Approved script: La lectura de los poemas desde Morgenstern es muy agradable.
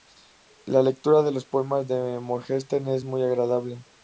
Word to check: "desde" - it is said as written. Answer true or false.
false